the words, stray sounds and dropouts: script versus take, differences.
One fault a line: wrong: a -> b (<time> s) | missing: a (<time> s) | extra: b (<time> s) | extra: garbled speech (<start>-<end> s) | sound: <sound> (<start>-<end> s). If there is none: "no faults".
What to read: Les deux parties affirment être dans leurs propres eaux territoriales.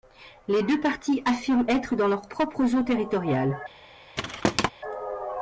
sound: thud (4.2-4.7 s)